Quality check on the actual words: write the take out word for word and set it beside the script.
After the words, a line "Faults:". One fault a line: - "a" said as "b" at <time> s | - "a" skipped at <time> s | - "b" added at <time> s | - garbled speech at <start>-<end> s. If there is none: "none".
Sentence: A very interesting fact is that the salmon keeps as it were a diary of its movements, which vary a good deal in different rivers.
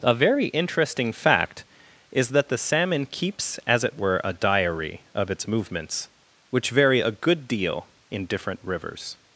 A very interesting fact is that the salmon keeps as it were a diary of its movements, which vary a good deal in different rivers.
Faults:
none